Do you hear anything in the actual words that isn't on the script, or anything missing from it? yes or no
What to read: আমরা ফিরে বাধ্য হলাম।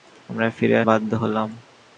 no